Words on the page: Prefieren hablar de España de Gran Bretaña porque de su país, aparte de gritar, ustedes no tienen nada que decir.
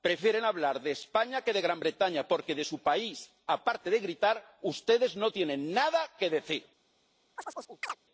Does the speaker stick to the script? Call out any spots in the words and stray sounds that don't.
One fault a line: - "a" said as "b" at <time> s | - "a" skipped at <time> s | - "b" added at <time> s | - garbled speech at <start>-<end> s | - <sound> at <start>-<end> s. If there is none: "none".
- "que" added at 1.4 s
- chirp at 7.4-8.0 s